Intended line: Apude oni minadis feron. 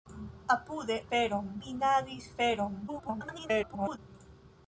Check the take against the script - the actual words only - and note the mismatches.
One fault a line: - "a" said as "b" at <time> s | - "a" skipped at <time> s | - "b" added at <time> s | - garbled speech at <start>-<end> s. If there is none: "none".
- "oni" said as "feron" at 1.1 s
- garbled speech at 2.9-4.0 s